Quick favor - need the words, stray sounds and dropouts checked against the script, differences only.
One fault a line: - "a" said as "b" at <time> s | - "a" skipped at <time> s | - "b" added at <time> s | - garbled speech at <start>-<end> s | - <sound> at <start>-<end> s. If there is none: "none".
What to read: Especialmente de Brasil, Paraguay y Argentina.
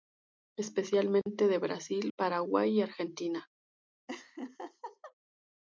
- laugh at 4.1-5.1 s